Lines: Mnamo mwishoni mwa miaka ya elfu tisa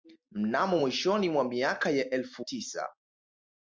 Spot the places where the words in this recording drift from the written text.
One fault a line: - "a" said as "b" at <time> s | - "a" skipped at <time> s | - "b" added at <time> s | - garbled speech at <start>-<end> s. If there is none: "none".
none